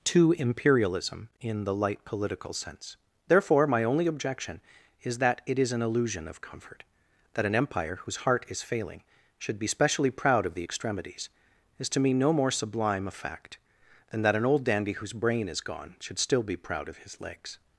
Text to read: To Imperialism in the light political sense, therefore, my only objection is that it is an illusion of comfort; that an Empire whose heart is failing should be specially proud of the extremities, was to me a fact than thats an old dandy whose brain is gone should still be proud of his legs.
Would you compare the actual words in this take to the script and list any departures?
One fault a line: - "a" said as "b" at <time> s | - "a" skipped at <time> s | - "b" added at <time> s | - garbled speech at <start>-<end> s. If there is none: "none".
- "was" said as "is" at 11.8 s
- "no more sublime" added at 12.1 s
- "thats" said as "that" at 14.2 s